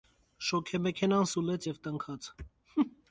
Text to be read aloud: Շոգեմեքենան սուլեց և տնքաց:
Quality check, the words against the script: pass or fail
pass